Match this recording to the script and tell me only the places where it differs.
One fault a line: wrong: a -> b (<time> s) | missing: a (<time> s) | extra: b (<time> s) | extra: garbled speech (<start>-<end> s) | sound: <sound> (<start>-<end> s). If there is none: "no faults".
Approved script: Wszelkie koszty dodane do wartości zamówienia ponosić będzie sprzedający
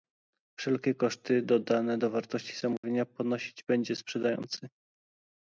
sound: dropout (2.8-2.8 s)